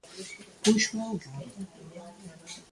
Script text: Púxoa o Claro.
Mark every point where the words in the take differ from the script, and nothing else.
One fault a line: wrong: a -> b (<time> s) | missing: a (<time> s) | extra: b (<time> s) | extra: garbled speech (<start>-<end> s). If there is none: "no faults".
no faults